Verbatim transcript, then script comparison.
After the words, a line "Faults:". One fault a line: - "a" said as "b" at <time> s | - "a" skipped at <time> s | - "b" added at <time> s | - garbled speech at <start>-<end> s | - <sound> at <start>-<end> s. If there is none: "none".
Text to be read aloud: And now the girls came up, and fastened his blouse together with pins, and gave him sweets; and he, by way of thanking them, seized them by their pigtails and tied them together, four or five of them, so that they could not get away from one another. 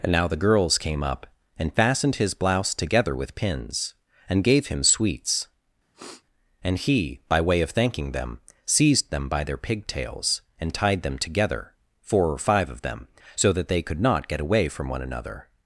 And now the girls came up, and fastened his blouse together with pins, and gave him sweets; and he, by way of thanking them, seized them by their pigtails and tied them together, four or five of them, so that they could not get away from one another.
Faults:
- sniff at 5.9-6.2 s